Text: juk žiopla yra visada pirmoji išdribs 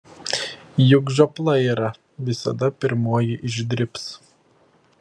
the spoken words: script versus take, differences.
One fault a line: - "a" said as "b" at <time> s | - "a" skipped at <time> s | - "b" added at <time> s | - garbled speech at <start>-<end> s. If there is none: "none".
none